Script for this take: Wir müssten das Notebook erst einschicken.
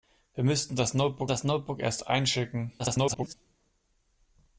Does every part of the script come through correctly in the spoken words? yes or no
no